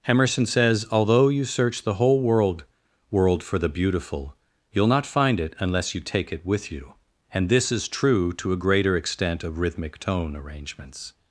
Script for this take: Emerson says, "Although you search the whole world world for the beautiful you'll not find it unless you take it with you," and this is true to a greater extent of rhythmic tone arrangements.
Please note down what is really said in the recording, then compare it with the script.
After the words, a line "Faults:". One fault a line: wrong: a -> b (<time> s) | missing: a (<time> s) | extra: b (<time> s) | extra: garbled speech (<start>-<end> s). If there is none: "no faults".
Emerson says, "Although you search the whole world world for the beautiful you'll not find it unless you take it with you," and this is true to a greater extent of rhythmic tone arrangements.
Faults:
no faults